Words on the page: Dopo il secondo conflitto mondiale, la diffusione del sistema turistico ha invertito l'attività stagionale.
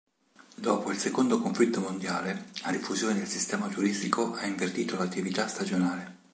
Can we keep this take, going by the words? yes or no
yes